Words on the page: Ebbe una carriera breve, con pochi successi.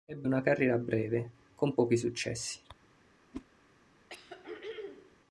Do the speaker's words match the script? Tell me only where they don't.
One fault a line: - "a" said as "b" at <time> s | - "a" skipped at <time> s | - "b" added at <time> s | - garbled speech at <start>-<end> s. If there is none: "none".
none